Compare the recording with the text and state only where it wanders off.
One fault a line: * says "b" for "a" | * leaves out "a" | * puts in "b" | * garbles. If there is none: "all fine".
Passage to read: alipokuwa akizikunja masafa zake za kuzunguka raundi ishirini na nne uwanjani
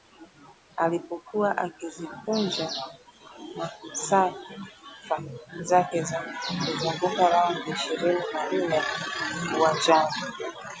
all fine